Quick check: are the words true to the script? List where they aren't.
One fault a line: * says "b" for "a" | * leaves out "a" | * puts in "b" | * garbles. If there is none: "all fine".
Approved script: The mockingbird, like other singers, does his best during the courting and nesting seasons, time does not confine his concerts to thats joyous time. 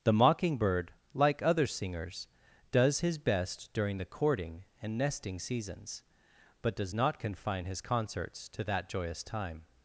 * says "but" for "time"
* says "that" for "thats"